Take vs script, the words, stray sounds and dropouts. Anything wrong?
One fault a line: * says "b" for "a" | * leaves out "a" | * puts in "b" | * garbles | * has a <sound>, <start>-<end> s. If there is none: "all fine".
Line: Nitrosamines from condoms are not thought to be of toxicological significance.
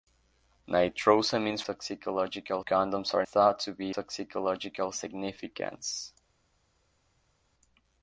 * says "toxicological" for "from"
* leaves out "not"
* leaves out "of"